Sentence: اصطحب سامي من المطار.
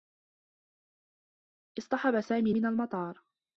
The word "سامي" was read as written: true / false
true